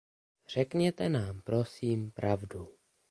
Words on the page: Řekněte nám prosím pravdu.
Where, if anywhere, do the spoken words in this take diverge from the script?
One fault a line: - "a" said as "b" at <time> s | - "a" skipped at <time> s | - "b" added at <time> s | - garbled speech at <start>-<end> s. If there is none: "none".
none